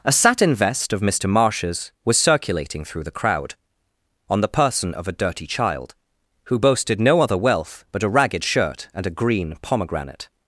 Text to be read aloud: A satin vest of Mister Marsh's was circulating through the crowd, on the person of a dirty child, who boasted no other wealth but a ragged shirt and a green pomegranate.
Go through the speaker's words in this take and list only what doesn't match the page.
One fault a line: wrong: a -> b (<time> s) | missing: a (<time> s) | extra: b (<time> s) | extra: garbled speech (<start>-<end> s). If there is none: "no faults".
no faults